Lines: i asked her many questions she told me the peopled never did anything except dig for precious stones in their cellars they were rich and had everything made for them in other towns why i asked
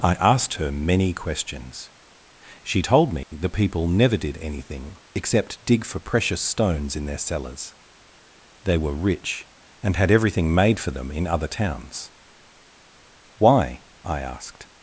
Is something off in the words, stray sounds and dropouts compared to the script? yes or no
yes